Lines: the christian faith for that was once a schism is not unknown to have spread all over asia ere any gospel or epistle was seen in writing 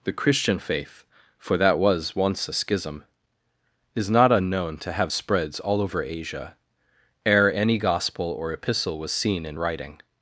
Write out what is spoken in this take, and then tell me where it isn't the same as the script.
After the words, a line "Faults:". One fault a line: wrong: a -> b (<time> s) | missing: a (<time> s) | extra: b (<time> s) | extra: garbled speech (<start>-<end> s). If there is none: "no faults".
the christian faith for that was once a schism is not unknown to have spreads all over asia ere any gospel or epistle was seen in writing
Faults:
wrong: spread -> spreads (5.1 s)